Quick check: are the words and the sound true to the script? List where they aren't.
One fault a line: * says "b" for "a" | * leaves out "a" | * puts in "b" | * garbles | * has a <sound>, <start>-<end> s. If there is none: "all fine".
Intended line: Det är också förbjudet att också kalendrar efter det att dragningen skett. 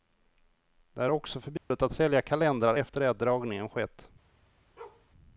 * has a dropout, 1.6-1.7 s
* says "sälja" for "också"
* has a bark, 4.8-5.1 s